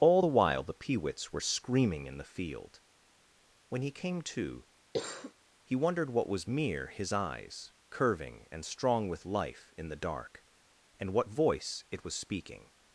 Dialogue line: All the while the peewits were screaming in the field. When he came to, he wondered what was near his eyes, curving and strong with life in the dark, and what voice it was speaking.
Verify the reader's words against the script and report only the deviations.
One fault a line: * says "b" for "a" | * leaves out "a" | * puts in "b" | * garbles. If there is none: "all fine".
* says "mere" for "near"